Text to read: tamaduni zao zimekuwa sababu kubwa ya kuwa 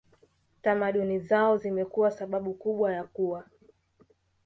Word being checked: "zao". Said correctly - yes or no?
yes